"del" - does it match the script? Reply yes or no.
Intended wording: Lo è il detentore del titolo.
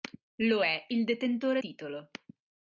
no